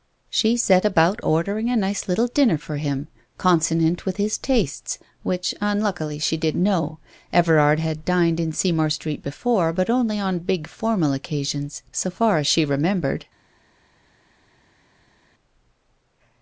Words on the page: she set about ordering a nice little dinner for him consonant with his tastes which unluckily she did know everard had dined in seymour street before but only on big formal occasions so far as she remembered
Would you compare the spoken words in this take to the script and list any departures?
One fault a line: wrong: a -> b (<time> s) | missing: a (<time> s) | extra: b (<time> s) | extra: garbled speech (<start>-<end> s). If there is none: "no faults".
no faults